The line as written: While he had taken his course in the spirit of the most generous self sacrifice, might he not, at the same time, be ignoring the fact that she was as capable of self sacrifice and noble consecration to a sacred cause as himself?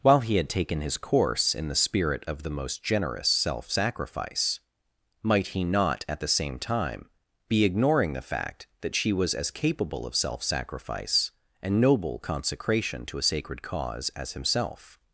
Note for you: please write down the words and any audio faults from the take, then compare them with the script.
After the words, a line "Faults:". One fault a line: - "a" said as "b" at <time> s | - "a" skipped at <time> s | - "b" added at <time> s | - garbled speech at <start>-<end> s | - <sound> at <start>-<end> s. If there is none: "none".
While he had taken his course in the spirit of the most generous self sacrifice, might he not, at the same time, be ignoring the fact that she was as capable of self sacrifice and noble consecration to a sacred cause as himself?
Faults:
none